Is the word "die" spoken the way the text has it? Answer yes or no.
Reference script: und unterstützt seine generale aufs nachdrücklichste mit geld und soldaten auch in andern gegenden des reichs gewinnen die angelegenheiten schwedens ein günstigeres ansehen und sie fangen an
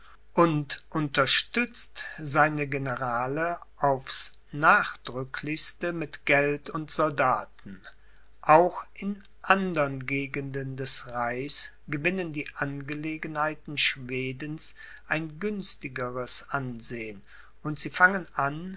yes